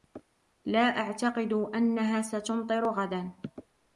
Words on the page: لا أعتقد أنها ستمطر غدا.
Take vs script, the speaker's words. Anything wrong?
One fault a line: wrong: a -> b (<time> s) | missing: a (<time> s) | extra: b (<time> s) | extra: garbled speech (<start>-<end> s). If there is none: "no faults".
no faults